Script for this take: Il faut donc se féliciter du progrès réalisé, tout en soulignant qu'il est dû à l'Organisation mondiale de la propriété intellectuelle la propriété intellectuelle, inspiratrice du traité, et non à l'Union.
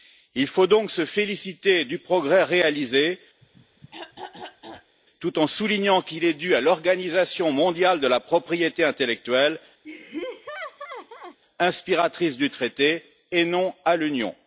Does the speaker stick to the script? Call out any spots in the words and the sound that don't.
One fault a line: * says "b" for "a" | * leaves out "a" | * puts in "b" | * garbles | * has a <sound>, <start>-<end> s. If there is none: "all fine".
* has a throat clearing, 3.4-5.0 s
* leaves out "la propriété intellectuelle"
* has a laugh, 9.8-11.4 s